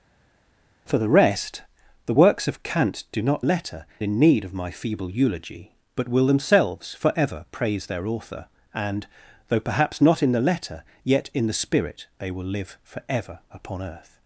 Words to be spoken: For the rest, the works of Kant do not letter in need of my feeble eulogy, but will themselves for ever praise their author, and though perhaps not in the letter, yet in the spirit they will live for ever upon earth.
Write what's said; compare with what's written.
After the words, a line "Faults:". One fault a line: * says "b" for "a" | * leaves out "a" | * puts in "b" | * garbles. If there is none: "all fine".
For the rest, the works of Kant do not letter in need of my feeble eulogy, but will themselves for ever praise their author, and though perhaps not in the letter, yet in the spirit they will live for ever upon earth.
Faults:
all fine